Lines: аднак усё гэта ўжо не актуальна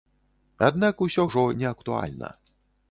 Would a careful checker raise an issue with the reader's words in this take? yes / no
yes